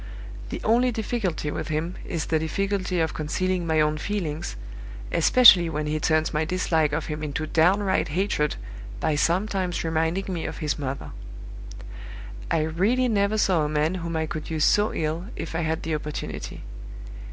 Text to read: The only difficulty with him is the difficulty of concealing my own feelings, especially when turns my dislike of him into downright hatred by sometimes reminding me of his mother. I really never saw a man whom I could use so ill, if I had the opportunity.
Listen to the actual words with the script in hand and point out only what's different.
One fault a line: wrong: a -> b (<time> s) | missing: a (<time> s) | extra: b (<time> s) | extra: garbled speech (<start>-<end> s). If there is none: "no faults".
extra: he (5.9 s)